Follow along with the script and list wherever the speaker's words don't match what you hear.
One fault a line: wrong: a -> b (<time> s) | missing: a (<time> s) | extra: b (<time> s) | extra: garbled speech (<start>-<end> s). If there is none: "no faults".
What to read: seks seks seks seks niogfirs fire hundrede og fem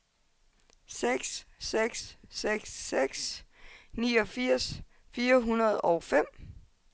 no faults